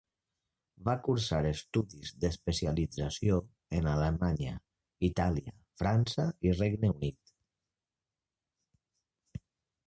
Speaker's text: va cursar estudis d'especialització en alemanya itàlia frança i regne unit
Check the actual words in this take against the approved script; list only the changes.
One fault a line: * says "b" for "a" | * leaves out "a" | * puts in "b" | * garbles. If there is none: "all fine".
all fine